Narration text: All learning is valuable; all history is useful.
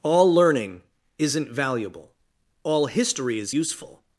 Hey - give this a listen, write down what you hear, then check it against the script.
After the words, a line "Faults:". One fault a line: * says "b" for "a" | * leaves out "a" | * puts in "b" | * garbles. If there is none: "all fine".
All learning isn't valuable; all history is useful.
Faults:
* says "isn't" for "is"